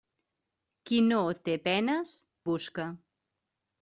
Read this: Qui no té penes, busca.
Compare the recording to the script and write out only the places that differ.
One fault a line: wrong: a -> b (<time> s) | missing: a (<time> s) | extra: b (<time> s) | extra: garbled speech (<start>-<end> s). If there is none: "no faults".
no faults